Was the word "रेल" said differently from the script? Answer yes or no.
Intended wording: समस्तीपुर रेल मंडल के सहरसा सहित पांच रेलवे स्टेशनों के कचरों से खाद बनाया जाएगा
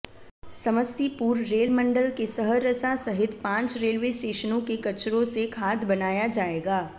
no